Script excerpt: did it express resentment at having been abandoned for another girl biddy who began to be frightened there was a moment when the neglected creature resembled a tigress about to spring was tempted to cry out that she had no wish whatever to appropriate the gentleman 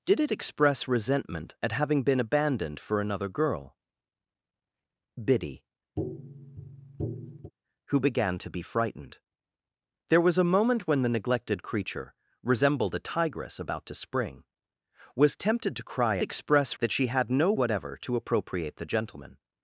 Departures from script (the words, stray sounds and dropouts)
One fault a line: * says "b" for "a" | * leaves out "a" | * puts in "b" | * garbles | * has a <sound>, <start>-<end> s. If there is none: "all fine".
* has a tap, 6.0-7.5 s
* says "express" for "out"
* leaves out "wish"